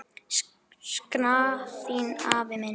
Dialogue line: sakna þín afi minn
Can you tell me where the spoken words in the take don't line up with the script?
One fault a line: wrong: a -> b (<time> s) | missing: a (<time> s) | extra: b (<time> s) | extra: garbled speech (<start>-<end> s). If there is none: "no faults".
no faults